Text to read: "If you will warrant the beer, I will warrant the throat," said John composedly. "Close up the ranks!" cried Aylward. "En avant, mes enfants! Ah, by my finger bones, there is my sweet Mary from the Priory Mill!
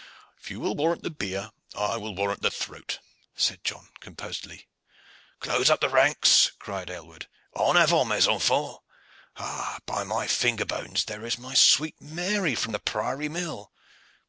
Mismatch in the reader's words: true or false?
false